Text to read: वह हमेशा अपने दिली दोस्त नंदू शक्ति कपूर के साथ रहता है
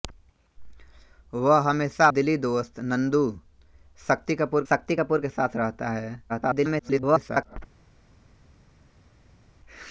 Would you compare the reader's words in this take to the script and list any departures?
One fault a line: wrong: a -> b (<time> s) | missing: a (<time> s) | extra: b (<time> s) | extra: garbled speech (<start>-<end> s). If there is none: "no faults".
missing: अपने (2.1 s)
extra: शक्ति कपूर (4.7 s)
extra: garbled speech (6.3-7.6 s)